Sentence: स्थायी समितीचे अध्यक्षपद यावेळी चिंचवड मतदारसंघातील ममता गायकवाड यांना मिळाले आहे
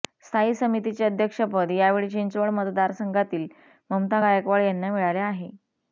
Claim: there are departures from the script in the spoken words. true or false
false